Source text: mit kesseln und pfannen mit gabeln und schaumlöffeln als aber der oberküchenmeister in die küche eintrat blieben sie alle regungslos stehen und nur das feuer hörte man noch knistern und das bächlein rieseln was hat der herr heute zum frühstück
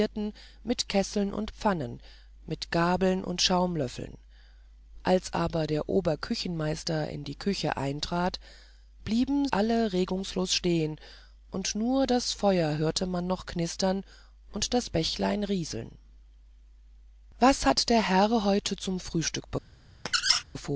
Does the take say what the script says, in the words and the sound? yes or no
no